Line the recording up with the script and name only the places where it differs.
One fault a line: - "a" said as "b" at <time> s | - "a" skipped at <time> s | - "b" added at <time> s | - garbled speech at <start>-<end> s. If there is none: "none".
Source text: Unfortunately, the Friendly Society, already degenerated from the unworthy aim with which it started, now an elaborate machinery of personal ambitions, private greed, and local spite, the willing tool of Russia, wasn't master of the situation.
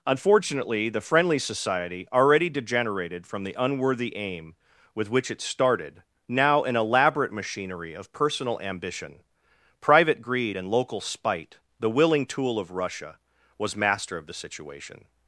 - "ambitions" said as "ambition" at 8.6 s
- "wasn't" said as "was" at 13.6 s